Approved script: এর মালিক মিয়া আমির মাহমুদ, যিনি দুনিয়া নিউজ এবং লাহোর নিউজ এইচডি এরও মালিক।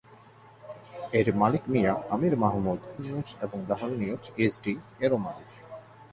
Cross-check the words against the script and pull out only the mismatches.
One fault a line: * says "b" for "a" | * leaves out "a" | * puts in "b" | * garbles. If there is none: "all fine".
* leaves out "যিনি দুনিয়া"